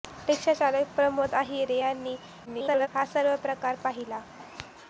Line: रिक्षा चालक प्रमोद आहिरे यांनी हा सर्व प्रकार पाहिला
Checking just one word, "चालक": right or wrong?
right